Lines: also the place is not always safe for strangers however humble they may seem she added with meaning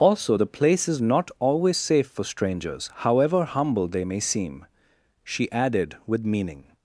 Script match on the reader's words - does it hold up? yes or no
yes